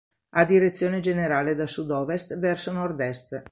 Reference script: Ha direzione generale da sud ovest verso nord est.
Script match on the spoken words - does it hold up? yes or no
yes